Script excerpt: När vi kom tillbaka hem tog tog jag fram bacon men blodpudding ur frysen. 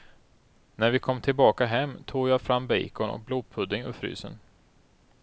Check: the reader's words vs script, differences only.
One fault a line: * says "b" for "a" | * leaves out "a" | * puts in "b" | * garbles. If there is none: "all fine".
* leaves out "tog"
* says "och" for "men"